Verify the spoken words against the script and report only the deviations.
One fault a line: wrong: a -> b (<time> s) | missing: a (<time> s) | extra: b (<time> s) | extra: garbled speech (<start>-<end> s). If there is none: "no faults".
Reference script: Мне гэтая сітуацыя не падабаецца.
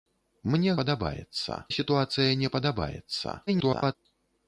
wrong: гэтая -> падабаецца (0.8 s)
extra: garbled speech (3.5-4.0 s)